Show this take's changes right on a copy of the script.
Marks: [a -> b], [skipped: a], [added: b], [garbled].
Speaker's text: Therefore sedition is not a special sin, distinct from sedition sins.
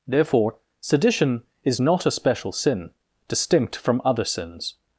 Therefore sedition is not a special sin, distinct from [sedition -> other] sins.